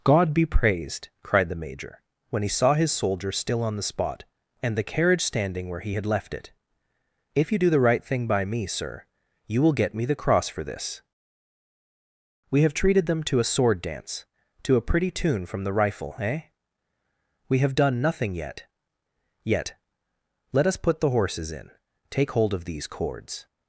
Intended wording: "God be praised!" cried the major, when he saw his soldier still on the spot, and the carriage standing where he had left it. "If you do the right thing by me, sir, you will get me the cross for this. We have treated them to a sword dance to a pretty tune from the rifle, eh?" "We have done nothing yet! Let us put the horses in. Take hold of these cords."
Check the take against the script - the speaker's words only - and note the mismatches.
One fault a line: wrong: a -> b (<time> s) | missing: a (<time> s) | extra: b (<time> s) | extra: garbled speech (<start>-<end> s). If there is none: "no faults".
extra: yet (19.4 s)